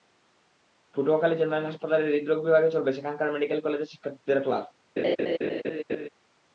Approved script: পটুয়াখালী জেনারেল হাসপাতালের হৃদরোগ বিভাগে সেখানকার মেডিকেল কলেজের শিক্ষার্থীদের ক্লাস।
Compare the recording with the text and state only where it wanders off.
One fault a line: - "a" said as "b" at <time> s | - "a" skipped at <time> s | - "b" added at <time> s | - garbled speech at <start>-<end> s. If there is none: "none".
- "চলবে" added at 2.7 s